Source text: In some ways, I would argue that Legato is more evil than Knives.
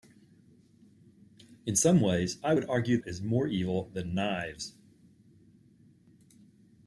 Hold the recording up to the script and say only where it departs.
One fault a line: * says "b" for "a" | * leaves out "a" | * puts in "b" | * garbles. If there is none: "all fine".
* leaves out "that Legato"